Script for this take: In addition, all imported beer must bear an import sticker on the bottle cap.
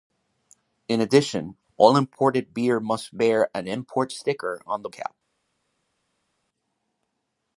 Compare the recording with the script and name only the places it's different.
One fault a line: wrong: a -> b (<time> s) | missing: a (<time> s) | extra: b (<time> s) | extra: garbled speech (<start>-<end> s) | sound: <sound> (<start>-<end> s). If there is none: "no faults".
missing: bottle (4.9 s)